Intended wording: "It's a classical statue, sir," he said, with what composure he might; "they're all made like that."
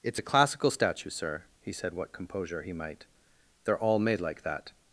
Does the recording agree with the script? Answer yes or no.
no